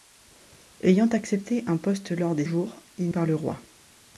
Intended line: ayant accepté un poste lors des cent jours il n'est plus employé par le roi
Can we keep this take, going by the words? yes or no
no